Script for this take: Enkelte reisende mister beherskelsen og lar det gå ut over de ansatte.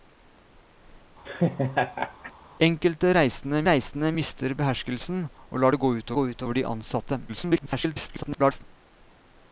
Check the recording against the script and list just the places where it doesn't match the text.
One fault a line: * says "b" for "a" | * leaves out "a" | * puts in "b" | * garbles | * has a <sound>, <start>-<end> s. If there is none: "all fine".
* has a laugh, 1.3-2.3 s
* puts in "reisende"
* puts in "gå ut"
* garbles